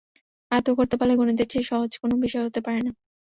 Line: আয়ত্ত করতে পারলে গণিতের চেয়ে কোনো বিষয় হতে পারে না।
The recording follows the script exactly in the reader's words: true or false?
false